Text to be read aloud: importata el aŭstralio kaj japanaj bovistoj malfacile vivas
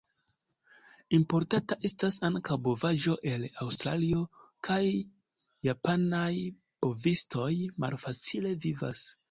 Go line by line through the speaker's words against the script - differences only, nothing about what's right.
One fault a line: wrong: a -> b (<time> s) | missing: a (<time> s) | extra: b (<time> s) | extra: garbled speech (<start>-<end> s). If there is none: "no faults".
extra: estas ankaŭ bovaĵo (1.9 s)